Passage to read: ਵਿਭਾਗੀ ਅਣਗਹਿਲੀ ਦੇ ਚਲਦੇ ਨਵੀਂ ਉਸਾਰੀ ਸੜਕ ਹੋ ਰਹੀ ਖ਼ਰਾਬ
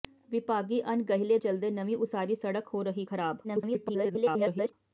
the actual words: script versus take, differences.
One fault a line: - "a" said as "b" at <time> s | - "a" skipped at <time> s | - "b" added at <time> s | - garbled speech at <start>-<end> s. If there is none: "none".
- "ਦੇ" skipped at 1.4 s
- garbled speech at 3.4-4.7 s